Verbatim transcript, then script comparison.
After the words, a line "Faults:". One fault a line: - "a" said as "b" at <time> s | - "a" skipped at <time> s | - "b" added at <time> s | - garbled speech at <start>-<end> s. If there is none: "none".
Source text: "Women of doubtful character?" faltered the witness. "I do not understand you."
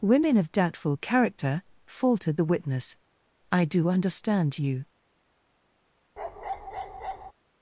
"Women of doubtful character?" faltered the witness. "I do understand you."
Faults:
- "not" skipped at 3.9 s